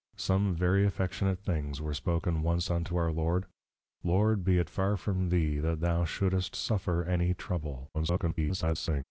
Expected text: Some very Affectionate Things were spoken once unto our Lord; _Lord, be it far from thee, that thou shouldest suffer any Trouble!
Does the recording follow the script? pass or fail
fail